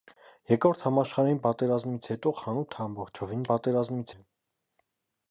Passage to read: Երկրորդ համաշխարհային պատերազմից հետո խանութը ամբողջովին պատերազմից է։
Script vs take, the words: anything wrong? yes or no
no